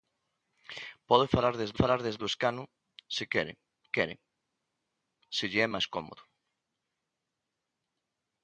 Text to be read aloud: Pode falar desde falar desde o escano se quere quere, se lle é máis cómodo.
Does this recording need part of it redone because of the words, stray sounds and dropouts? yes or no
no